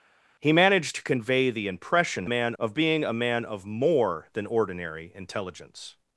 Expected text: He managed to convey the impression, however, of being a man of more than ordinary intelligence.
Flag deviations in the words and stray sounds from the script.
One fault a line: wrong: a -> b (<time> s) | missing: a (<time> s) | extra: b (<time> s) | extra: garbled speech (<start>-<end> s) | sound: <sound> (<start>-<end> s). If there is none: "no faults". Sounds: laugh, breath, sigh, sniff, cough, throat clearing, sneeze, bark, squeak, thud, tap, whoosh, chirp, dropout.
wrong: however -> man (2.2 s)